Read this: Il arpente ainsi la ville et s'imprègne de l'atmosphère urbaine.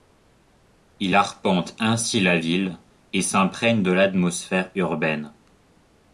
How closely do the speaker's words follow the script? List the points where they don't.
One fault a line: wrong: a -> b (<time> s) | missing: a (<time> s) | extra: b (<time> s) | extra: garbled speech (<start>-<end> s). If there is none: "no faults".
no faults